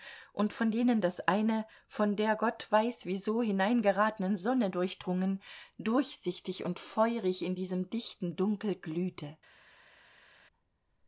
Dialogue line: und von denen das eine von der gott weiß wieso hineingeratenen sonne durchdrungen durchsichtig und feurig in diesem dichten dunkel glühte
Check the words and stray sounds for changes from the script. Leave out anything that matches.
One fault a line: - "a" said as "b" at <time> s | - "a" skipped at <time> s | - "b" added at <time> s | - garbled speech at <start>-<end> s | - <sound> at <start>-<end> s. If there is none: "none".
none